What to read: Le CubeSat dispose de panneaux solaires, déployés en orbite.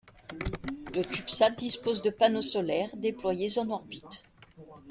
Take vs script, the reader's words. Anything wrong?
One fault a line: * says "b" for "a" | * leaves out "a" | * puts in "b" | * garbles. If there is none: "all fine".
all fine